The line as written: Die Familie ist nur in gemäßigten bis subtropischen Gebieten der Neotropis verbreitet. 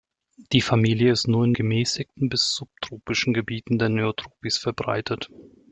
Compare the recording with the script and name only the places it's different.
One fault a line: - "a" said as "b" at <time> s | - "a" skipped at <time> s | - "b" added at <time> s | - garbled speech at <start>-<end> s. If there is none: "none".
none